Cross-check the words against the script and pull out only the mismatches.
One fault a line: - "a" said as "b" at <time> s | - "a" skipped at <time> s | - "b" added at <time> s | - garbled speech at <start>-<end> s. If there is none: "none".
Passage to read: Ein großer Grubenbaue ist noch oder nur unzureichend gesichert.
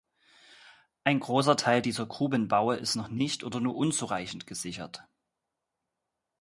- "Teil dieser" added at 1.6 s
- "nicht" added at 3.1 s